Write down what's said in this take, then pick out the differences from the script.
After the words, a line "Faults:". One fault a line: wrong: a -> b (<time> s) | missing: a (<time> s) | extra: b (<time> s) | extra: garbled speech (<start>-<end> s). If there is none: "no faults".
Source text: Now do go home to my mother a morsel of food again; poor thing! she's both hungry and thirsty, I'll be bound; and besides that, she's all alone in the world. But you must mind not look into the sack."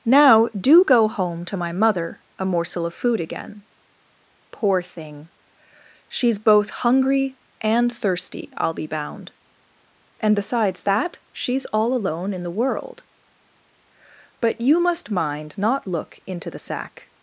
Now do go home to my mother a morsel of food again; poor thing! she's both hungry and thirsty, I'll be bound; and besides that, she's all alone in the world. But you must mind not look into the sack."
Faults:
no faults